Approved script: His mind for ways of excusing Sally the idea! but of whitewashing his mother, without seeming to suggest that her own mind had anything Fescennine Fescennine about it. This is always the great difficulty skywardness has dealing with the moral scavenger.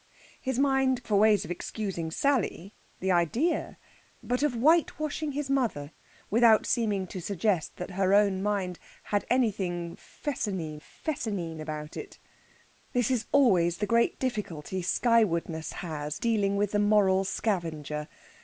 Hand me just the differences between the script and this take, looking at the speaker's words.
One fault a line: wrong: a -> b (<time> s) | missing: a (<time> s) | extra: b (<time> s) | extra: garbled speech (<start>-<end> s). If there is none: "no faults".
no faults